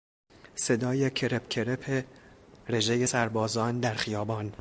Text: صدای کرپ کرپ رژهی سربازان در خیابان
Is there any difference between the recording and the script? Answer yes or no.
no